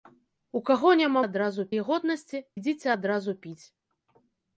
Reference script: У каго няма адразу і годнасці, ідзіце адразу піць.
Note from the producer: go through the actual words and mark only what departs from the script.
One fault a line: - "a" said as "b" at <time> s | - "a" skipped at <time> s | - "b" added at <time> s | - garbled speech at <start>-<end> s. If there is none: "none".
none